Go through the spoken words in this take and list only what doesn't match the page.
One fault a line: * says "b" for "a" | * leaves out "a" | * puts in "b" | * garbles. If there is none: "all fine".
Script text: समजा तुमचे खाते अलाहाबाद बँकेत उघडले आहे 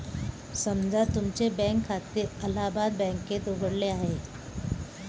* puts in "बँक"